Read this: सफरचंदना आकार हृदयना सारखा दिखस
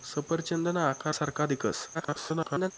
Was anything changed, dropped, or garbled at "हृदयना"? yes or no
yes